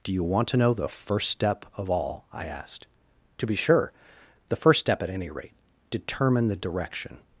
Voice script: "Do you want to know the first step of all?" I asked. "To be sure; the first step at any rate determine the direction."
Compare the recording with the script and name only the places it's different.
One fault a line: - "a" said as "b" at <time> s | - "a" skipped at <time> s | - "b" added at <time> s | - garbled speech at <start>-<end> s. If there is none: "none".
none